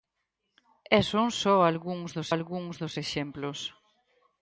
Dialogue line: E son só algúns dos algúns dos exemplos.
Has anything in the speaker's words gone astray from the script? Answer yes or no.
no